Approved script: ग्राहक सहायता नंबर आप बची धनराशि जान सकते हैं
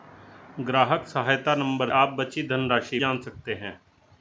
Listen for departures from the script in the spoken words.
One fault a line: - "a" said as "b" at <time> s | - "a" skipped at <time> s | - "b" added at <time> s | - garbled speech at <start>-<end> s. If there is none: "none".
none